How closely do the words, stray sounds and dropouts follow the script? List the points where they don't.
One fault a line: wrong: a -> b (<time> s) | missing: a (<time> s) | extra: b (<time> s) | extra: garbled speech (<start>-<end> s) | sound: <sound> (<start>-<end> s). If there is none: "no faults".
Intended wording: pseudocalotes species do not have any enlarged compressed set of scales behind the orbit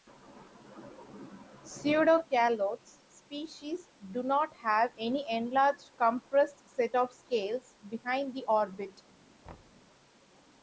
sound: thud (9.4-9.8 s)